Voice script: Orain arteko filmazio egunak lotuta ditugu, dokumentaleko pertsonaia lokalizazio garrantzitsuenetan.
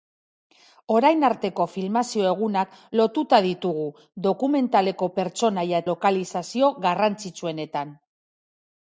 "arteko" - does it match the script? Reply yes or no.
yes